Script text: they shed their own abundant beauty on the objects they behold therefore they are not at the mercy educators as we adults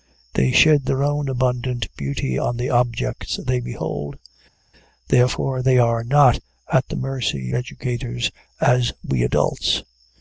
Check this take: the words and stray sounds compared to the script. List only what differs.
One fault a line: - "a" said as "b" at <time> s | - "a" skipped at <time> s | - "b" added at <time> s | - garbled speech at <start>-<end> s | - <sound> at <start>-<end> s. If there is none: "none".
none